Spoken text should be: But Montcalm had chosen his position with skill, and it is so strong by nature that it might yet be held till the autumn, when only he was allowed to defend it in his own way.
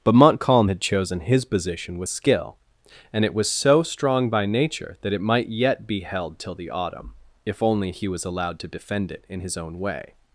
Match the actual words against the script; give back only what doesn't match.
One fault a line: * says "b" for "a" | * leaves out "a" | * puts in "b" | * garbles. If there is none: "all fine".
* says "was" for "is"
* says "if" for "when"